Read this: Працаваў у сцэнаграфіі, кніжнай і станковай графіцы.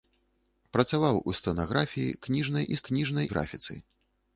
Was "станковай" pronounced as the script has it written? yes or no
no